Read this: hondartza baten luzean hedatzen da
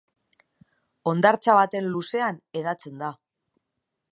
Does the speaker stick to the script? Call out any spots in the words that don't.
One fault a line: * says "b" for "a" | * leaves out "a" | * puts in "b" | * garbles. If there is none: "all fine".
all fine